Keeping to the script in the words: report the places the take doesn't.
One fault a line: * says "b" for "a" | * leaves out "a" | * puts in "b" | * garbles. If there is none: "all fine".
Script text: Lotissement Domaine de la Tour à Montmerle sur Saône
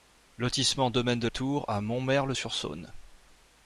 * leaves out "la"